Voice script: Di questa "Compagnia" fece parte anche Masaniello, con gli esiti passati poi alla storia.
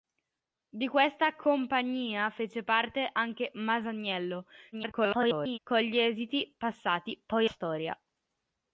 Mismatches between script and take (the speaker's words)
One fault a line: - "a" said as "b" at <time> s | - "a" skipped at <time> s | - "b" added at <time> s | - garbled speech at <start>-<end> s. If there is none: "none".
- garbled speech at 4.7-5.6 s
- "alla" skipped at 7.5 s